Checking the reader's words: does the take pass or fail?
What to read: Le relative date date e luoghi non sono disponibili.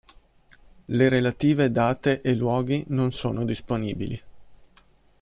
fail